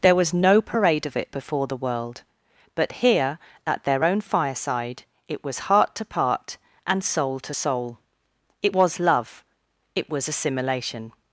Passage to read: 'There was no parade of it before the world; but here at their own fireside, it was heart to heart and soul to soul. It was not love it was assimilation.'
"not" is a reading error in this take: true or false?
true